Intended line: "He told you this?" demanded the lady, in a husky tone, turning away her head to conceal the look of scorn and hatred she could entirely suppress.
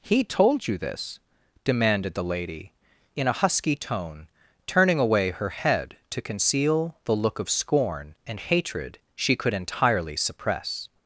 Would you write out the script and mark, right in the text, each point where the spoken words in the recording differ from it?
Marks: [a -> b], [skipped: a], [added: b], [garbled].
"He told you this?" demanded the lady, in a husky tone, turning away her head to conceal the look of scorn and hatred she could entirely suppress.